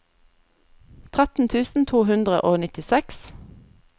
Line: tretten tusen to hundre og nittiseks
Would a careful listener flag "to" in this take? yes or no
no